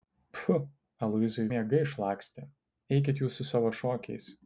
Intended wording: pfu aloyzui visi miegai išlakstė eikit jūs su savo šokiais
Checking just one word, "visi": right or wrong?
wrong